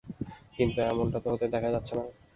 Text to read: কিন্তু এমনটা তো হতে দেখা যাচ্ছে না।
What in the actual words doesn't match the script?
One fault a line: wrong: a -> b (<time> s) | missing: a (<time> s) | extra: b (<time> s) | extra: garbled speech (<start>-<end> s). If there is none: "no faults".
no faults